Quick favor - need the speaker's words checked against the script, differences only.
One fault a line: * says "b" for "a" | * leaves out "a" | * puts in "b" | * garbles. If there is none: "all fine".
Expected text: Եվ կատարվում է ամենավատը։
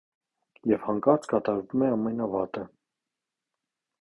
* puts in "հանկարծ"